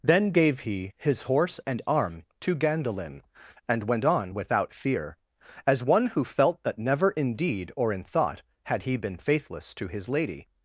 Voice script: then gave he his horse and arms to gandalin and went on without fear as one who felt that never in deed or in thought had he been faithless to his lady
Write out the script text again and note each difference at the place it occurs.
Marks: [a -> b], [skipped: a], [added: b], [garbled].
then gave he his horse and [arms -> arm] to gandalin and went on without fear as one who felt that never in deed or in thought had he been faithless to his lady